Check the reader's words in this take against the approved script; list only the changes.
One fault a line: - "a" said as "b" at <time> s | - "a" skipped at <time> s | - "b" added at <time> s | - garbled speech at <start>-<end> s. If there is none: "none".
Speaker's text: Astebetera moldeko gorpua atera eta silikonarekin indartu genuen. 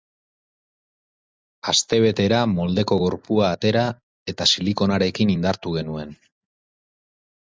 none